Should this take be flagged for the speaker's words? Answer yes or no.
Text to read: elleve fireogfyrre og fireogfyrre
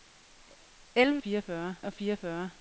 no